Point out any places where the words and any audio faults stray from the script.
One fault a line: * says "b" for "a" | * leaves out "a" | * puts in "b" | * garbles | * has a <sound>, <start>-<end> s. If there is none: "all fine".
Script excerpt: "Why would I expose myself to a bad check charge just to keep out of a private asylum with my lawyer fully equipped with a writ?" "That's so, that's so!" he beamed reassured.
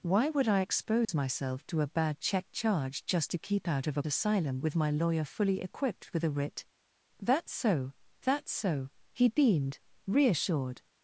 * has a dropout, 1.0-1.1 s
* leaves out "private"